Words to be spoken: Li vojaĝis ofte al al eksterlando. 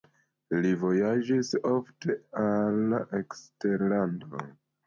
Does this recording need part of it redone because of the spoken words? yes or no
yes